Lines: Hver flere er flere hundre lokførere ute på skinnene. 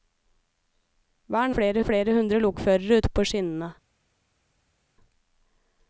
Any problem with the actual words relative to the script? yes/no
no